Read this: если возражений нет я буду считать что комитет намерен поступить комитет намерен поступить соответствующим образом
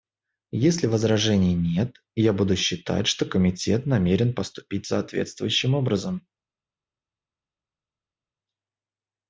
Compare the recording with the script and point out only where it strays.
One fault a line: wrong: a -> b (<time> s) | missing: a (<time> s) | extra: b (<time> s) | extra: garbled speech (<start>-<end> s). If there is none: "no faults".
missing: комитет намерен поступить (4.9 s)